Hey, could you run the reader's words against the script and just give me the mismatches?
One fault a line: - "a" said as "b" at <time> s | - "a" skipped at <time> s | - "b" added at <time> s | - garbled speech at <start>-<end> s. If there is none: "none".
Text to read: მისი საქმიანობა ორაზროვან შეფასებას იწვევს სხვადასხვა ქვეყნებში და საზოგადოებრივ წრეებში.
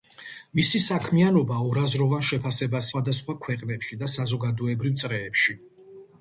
- "იწვევს" skipped at 2.9 s